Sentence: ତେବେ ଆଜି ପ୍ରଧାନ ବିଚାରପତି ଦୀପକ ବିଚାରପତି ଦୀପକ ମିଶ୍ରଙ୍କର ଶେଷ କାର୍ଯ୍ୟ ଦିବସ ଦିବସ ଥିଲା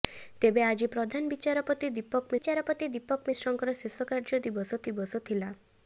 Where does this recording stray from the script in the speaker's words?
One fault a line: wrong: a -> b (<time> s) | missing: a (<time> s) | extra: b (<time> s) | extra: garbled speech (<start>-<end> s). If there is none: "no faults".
no faults